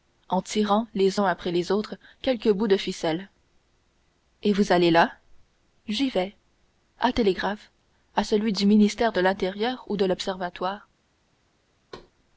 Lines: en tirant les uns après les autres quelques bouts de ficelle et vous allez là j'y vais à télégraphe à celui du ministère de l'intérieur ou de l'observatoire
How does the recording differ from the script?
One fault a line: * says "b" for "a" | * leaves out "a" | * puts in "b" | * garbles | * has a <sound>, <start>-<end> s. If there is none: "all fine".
* has a thud, 11.9-12.1 s